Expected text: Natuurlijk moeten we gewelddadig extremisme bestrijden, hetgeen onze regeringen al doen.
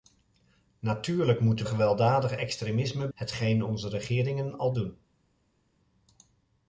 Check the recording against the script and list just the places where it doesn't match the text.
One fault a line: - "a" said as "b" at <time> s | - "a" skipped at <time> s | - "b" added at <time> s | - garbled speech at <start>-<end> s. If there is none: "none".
- "we" skipped at 1.6 s
- "bestrijden" skipped at 3.1 s